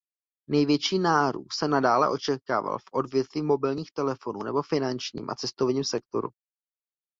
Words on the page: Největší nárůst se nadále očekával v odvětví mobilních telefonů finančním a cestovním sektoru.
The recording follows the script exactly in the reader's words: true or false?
false